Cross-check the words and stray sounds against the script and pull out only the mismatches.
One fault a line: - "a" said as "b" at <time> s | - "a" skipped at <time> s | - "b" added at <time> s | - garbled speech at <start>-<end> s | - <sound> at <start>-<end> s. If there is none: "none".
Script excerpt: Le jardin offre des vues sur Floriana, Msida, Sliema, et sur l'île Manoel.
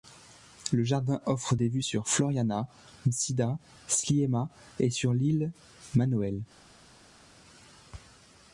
none